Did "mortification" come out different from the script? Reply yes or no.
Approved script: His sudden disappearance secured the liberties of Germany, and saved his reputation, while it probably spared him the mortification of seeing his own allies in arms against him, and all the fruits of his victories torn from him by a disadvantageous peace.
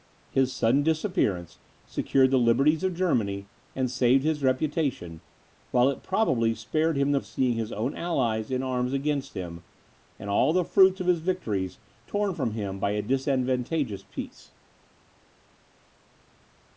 yes